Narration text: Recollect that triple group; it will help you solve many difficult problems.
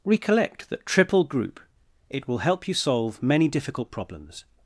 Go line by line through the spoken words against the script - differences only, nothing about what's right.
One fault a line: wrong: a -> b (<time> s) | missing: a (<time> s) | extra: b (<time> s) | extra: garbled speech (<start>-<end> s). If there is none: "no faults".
no faults